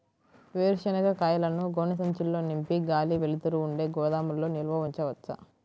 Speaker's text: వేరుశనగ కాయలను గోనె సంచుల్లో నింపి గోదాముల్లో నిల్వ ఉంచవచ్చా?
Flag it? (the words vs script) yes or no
yes